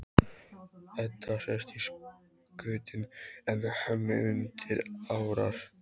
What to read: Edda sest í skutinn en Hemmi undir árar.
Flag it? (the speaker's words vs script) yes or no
no